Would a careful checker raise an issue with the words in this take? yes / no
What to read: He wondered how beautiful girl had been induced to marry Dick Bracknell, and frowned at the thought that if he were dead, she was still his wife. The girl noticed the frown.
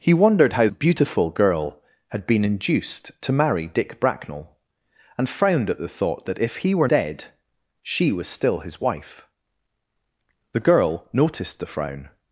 no